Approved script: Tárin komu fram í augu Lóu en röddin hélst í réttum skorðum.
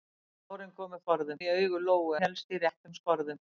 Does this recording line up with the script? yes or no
no